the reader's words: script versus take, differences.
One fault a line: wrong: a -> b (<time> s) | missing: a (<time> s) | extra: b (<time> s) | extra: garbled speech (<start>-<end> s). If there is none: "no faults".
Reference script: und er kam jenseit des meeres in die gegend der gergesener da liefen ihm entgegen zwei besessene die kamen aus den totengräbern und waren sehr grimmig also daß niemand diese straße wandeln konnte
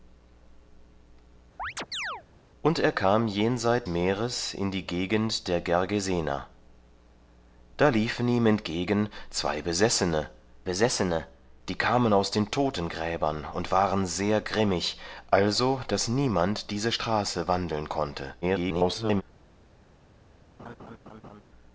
missing: des (3.9 s)
extra: besessene (10.6 s)
extra: garbled speech (18.4-19.2 s)